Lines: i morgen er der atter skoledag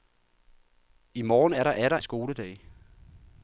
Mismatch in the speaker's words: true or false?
false